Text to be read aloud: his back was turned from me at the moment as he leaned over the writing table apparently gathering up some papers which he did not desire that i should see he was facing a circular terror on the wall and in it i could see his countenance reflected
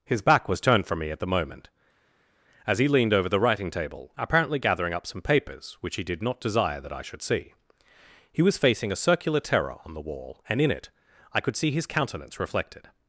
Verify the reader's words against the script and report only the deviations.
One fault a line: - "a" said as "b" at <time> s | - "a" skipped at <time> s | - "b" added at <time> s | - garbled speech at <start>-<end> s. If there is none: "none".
none